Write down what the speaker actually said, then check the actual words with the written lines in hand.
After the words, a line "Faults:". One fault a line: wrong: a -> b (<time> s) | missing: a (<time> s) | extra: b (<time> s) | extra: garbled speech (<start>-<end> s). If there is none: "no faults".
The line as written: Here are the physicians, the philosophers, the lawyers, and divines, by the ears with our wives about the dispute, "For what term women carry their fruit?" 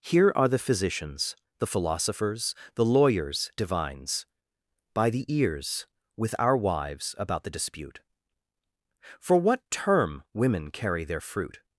Here are the physicians, the philosophers, the lawyers, divines, by the ears with our wives about the dispute, "For what term women carry their fruit?"
Faults:
missing: and (3.5 s)